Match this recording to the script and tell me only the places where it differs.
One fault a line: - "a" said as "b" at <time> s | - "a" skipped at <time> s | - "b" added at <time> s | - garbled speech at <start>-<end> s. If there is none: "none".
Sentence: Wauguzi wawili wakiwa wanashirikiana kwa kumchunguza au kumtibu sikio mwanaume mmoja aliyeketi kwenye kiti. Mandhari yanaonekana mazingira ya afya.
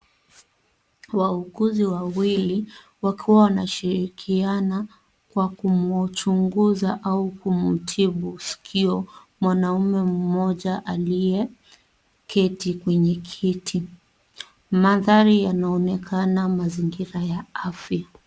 none